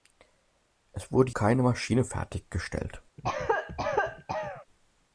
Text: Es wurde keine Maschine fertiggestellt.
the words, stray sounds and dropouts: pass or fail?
fail